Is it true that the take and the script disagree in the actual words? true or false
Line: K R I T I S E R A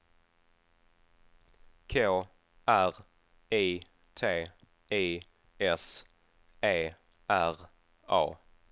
false